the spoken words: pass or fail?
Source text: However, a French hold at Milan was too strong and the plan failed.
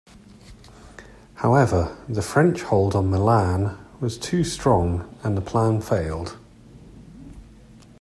fail